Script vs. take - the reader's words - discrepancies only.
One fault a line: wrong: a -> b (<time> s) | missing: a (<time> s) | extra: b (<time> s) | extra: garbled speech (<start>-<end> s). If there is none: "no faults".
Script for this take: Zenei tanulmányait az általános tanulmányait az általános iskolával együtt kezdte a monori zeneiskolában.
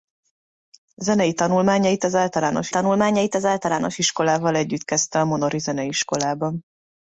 no faults